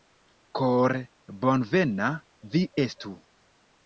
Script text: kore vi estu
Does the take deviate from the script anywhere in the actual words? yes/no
yes